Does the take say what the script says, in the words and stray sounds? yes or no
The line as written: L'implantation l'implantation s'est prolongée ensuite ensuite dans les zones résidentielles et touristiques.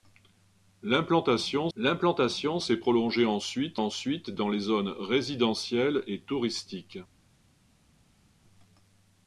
yes